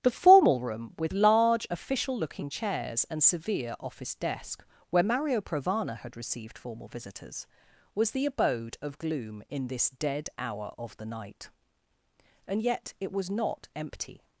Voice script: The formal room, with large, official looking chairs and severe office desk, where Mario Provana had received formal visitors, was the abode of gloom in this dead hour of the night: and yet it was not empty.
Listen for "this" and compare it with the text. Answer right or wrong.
right